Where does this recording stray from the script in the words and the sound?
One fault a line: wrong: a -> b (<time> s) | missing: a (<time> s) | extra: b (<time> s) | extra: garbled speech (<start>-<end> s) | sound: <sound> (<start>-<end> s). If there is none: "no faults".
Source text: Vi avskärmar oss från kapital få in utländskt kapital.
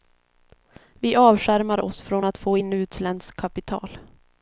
wrong: kapital -> att (2.2 s)